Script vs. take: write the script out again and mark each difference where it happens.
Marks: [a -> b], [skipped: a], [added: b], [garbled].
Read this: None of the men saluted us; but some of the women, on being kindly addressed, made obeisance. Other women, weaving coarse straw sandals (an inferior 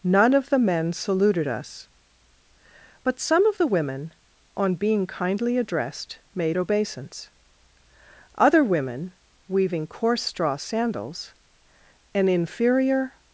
None of the men saluted us; but some of the women, on being kindly addressed, made obeisance. Other women, weaving coarse straw sandals (an inferior